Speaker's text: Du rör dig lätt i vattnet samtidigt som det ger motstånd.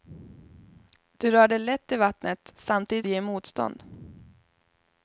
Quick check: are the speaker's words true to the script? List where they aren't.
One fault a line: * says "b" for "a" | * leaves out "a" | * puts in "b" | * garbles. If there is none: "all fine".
* leaves out "som"